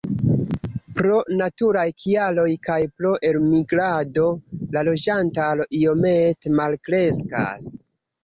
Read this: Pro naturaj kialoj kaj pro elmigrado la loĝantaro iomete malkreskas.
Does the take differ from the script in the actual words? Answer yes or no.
no